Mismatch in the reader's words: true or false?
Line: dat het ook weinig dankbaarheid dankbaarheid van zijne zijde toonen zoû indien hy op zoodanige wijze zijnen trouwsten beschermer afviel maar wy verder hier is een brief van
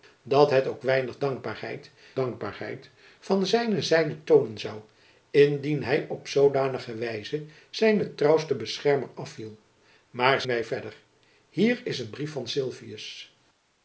false